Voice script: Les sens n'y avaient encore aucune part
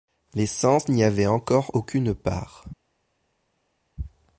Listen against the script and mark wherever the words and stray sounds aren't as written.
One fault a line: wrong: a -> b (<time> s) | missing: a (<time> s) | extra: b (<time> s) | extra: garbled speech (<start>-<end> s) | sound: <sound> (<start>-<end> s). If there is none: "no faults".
no faults